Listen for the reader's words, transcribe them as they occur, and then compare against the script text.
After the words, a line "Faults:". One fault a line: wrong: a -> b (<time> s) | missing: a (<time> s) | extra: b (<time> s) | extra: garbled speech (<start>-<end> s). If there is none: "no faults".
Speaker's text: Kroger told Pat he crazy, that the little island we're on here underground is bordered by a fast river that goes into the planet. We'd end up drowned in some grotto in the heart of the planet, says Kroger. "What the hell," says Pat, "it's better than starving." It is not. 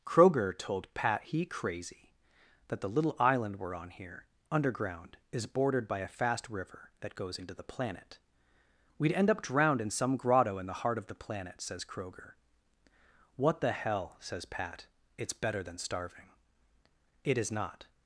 Kroger told Pat he crazy, that the little island we're on here underground is bordered by a fast river that goes into the planet. We'd end up drowned in some grotto in the heart of the planet, says Kroger. "What the hell," says Pat, "it's better than starving." It is not.
Faults:
no faults